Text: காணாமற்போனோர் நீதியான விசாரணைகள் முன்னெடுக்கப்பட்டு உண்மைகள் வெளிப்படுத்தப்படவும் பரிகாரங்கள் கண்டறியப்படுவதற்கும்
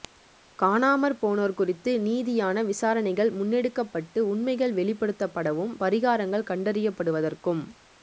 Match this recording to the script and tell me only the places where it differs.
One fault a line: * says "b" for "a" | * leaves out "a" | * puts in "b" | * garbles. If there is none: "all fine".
* puts in "குறித்து"